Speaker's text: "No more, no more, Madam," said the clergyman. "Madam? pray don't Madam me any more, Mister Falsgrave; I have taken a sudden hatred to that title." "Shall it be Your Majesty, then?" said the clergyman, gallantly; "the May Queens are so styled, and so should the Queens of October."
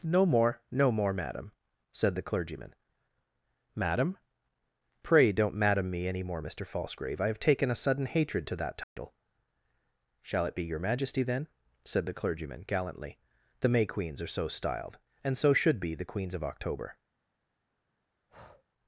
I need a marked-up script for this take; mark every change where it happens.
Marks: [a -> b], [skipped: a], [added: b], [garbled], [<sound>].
"No more, no more, Madam," said the clergyman. "Madam? pray don't Madam me any more, Mister Falsgrave; I have taken a sudden hatred to that title." [dropout] "Shall it be Your Majesty, then?" said the clergyman, gallantly; "the May Queens are so styled, and so should [added: be] the Queens of October." [breath]